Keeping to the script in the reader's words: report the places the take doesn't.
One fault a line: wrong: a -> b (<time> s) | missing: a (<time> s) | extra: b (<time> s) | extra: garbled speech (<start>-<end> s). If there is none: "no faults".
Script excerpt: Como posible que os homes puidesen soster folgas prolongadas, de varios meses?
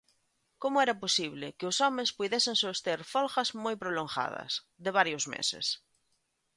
extra: era (0.8 s)
extra: moi (3.6 s)